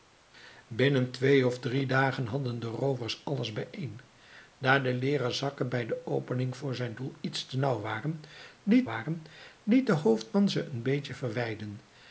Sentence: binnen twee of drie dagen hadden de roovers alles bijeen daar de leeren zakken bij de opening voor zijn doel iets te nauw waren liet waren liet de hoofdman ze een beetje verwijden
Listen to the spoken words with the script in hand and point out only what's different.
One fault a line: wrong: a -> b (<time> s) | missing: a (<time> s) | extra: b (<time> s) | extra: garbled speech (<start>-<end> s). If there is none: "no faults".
no faults